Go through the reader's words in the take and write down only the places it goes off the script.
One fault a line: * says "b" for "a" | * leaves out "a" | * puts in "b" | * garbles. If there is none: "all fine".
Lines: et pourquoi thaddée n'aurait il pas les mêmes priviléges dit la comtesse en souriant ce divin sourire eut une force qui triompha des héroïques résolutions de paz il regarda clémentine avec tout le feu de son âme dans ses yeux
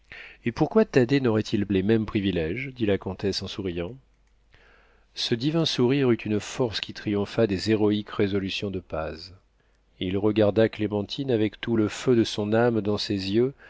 * leaves out "pas"